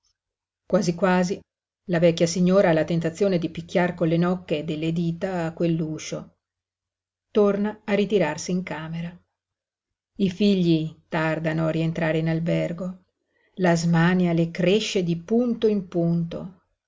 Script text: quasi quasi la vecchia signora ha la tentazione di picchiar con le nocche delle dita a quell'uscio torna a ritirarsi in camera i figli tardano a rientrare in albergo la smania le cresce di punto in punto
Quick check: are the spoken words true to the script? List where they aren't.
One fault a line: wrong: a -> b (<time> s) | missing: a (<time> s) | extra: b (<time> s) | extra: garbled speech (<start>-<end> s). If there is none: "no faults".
no faults